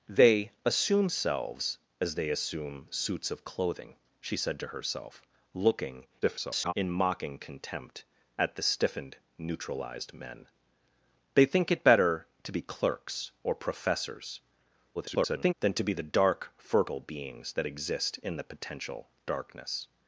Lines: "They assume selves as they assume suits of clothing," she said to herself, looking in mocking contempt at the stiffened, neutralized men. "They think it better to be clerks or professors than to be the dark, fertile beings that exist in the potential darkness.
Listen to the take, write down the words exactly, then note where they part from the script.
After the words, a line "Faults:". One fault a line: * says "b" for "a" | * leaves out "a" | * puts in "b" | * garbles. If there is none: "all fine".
"They assume selves as they assume suits of clothing," she said to herself, looking [garbled] in mocking contempt at the stiffened, neutralized men. "They think it better to be clerks or professors [garbled] than to be the dark, fertile beings that exist in the potential darkness.
Faults:
* garbles
* garbles